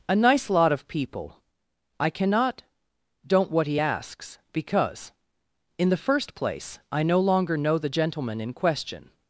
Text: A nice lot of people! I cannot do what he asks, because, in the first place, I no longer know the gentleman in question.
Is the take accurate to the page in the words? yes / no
no